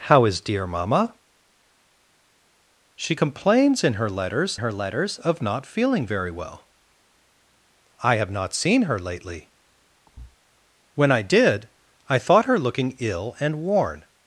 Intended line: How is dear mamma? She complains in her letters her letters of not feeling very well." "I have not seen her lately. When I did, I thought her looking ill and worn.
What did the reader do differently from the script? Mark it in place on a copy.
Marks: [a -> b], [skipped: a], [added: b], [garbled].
How is dear mamma? She complains in her letters her letters of not feeling very well." "I have not seen her lately. When I did, I thought her looking ill and worn.